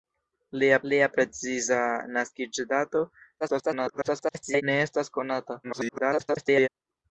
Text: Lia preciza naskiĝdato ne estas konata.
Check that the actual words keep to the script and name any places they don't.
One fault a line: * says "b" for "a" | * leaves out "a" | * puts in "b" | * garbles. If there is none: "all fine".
* puts in "lia"
* garbles
* garbles